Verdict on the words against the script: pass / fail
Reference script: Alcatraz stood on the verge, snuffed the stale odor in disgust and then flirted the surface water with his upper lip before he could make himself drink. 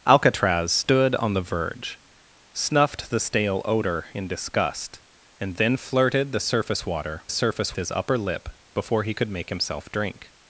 fail